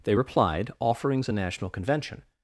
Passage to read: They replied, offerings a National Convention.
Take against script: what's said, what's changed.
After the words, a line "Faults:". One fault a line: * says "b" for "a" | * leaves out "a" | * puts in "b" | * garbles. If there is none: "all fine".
They replied, offerings a National Convention.
Faults:
all fine